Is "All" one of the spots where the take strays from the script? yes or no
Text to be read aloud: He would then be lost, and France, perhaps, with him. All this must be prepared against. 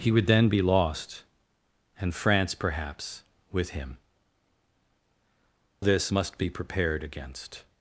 yes